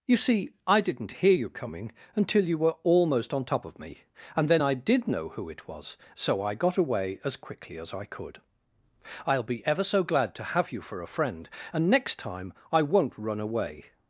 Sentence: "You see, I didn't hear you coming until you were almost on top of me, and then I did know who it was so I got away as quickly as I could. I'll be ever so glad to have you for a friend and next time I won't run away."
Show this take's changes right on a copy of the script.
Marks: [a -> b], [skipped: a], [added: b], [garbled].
"You see, I didn't hear you coming until you were almost on top of me, and then I did know who it was so I got away as quickly as I could. I'll be ever so glad to have you for a friend and next time I won't run away."